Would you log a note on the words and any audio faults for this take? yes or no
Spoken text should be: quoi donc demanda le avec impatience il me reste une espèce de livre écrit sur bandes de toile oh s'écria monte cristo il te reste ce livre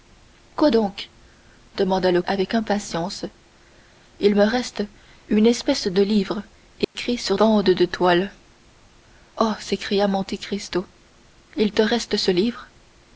yes